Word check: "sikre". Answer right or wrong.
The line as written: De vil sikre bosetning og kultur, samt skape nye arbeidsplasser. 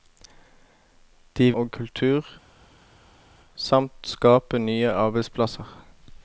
wrong